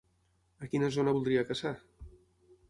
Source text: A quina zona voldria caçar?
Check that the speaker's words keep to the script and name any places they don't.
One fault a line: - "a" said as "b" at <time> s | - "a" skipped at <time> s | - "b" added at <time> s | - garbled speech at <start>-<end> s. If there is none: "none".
none